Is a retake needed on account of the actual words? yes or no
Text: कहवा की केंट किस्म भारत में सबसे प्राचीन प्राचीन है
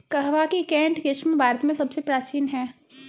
yes